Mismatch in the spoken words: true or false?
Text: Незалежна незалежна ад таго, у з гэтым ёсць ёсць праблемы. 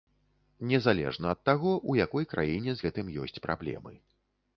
true